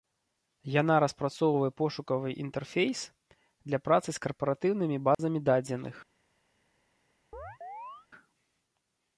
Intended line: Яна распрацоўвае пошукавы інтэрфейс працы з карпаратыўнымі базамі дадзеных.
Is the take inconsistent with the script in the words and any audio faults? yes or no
yes